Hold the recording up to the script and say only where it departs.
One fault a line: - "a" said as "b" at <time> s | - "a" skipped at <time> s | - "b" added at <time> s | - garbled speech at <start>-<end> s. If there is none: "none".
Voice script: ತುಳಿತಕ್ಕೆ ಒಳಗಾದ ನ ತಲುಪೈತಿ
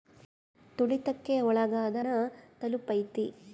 none